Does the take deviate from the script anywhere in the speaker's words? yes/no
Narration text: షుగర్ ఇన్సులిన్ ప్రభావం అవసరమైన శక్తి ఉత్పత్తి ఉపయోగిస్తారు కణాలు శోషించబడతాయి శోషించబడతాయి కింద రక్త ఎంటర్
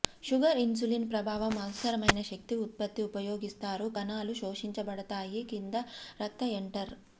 yes